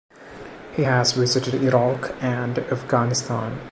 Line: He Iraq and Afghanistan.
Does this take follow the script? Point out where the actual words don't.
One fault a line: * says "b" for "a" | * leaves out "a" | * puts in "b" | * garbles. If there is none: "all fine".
* puts in "has visited"